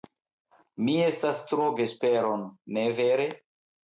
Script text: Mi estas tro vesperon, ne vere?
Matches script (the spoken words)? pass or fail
pass